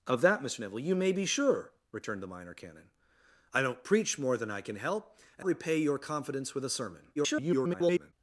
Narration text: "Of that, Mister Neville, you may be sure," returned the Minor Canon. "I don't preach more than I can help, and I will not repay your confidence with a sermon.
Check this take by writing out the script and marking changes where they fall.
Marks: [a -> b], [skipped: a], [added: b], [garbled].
"Of that, Mister Neville, you may be sure," returned the Minor Canon. "I don't preach more than I can help, and [skipped: I will not] repay your confidence with a sermon. [garbled]